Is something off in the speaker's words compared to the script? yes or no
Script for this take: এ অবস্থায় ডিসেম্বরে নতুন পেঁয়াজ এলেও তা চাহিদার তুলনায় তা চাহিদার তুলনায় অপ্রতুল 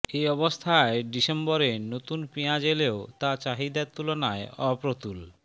yes